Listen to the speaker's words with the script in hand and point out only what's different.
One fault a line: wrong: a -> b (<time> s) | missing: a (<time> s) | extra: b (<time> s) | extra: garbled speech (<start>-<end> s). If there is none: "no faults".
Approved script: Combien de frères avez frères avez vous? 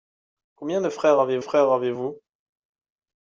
no faults